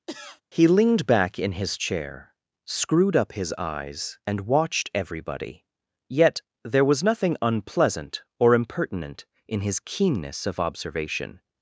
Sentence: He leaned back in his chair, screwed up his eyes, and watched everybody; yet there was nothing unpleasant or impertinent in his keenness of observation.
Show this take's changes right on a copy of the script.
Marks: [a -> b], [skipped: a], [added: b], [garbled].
He leaned back in his chair, screwed up his eyes, and watched everybody; yet there was nothing unpleasant or impertinent in his keenness of observation.